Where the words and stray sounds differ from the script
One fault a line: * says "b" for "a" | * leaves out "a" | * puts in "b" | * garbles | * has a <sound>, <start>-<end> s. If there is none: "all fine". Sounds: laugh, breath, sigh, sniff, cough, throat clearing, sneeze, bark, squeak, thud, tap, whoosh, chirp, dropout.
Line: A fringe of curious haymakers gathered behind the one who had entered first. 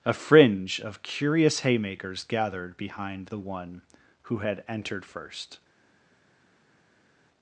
all fine